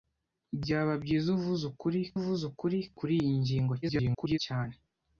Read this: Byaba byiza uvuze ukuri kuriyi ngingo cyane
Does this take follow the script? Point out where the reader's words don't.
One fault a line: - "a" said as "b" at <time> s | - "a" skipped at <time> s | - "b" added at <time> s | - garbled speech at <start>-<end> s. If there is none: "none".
- "uvuze ukuri" added at 2.2 s
- garbled speech at 3.8-4.4 s